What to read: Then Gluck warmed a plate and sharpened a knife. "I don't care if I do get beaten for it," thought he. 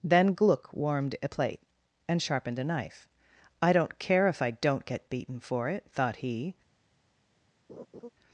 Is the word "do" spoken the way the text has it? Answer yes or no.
no